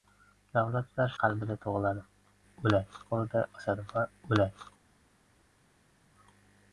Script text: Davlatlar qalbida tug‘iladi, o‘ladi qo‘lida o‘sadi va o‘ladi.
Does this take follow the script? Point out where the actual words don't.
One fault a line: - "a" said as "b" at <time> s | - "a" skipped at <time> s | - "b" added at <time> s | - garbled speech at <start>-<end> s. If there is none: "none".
none